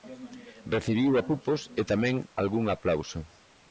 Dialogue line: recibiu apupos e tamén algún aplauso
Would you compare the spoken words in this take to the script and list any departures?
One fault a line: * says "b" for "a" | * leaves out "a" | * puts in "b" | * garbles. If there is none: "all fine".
all fine